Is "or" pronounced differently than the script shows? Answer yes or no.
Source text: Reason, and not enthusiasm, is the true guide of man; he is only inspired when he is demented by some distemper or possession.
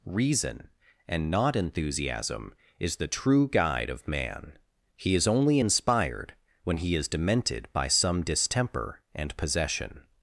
yes